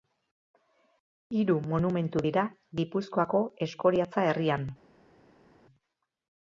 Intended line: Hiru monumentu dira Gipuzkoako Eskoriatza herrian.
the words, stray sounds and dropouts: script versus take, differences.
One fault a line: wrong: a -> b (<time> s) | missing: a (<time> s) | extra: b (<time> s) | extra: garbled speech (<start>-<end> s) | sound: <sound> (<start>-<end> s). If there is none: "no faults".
no faults